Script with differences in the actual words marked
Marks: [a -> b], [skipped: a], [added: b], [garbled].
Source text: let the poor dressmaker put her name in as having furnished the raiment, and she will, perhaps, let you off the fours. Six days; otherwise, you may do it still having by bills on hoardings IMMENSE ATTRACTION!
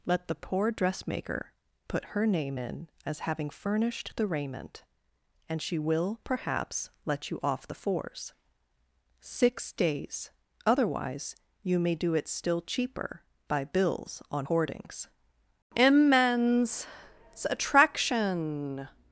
let the poor dressmaker put her name in as having furnished the raiment, and she will, perhaps, let you off the fours. Six days; otherwise, you may do it still [having -> cheaper] by bills on hoardings IMMENSE ATTRACTION!